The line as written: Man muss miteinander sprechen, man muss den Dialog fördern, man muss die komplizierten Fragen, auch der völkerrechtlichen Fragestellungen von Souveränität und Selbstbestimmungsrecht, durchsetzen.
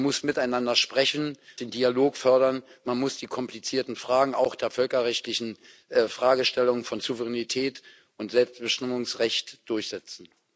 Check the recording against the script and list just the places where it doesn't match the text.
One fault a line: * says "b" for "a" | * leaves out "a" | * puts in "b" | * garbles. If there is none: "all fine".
* leaves out "man muss"